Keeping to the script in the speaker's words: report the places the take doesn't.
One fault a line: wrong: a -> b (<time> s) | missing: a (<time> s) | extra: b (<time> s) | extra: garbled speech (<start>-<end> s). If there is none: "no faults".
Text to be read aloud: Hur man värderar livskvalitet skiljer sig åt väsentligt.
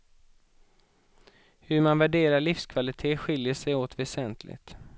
no faults